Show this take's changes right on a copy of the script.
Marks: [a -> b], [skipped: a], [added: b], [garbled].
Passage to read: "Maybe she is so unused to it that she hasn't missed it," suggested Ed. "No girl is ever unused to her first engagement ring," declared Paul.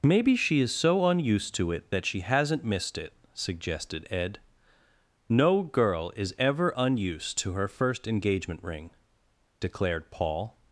"Maybe she is so unused to it that she hasn't missed it," suggested Ed. "No girl is ever unused to her first engagement ring," declared Paul.